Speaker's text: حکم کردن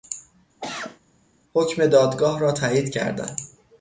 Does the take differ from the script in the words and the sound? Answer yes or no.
yes